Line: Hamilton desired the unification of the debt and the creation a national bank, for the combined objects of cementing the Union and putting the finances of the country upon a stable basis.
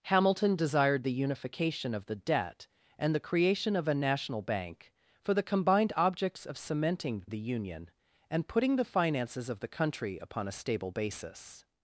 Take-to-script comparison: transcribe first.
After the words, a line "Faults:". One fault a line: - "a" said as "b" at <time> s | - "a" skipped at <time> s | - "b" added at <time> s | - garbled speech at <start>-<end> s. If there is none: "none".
Hamilton desired the unification of the debt and the creation of a national bank, for the combined objects of cementing the Union and putting the finances of the country upon a stable basis.
Faults:
- "of" added at 3.8 s